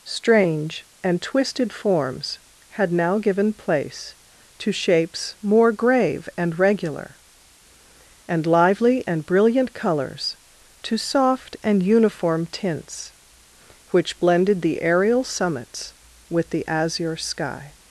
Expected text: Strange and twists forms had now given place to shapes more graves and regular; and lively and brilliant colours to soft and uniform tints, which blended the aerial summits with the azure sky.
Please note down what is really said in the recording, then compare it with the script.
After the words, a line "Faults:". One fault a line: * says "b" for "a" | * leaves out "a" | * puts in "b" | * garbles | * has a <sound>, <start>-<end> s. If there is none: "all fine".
Strange and twisted forms had now given place to shapes more grave and regular; and lively and brilliant colours to soft and uniform tints, which blended the aerial summits with the azure sky.
Faults:
* says "twisted" for "twists"
* says "grave" for "graves"